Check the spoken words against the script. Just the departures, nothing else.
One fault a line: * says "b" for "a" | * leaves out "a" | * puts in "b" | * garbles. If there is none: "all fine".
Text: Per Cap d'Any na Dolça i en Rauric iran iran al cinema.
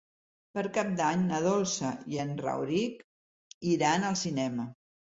* leaves out "iran"